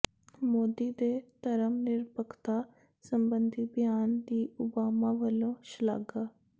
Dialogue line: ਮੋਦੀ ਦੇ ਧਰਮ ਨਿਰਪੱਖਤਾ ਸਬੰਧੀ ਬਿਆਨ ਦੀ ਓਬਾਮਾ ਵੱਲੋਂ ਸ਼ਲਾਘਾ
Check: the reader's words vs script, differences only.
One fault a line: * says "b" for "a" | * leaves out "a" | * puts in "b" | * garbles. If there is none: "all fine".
all fine